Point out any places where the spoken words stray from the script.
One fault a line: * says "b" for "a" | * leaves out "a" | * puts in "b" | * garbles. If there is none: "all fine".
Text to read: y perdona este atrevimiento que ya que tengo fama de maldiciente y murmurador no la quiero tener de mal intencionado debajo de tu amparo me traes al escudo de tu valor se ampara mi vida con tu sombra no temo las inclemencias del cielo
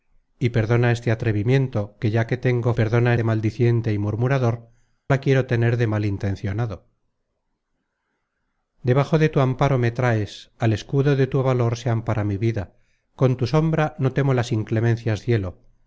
* says "perdona" for "fama"
* leaves out "no"
* leaves out "del"